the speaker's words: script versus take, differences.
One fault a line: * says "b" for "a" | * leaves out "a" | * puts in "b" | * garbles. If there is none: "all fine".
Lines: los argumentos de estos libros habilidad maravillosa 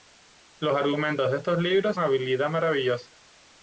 all fine